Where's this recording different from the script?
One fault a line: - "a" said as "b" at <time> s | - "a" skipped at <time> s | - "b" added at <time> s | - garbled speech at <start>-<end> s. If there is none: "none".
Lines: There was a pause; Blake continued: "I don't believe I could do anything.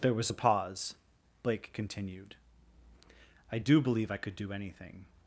- "don't" said as "do" at 3.6 s